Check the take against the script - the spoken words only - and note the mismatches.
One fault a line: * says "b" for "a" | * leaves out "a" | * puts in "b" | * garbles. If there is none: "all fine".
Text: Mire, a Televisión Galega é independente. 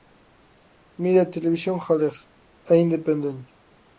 all fine